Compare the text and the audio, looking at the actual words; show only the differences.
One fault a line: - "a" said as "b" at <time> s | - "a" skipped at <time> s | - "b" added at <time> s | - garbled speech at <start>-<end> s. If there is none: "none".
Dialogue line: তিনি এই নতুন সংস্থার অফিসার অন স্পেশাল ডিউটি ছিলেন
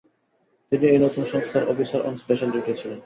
none